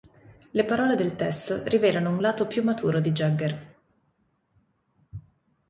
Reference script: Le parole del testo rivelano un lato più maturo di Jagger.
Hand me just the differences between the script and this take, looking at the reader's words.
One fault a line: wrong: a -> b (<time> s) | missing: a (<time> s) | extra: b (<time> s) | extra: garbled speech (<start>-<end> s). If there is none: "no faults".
no faults